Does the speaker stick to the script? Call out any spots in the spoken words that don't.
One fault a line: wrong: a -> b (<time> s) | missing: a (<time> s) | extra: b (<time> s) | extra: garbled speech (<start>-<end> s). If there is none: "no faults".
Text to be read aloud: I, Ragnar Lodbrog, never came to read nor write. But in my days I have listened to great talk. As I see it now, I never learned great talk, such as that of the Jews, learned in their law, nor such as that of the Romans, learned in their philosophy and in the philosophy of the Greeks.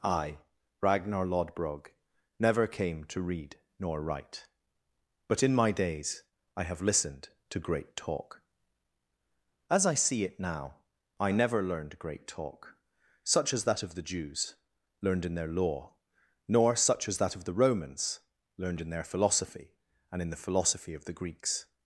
no faults